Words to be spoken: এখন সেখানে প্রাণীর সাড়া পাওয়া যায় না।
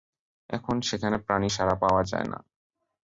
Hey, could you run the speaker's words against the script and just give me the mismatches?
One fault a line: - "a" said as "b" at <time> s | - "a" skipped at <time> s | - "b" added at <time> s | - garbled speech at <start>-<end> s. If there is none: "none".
none